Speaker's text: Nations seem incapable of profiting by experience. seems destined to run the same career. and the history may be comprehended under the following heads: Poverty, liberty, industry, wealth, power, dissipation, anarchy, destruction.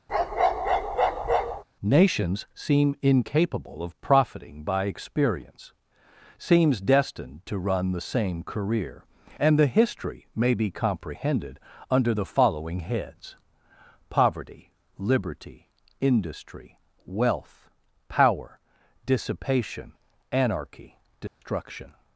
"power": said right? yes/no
yes